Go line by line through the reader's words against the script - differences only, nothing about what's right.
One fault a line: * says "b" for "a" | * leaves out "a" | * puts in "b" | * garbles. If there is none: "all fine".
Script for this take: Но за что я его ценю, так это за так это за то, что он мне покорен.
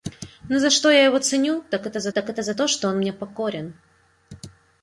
all fine